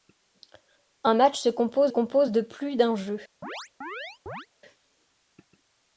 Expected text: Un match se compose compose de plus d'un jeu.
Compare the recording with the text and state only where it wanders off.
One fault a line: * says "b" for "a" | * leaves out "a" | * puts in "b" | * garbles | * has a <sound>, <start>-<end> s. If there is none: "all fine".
* has a chirp, 3.4-4.5 s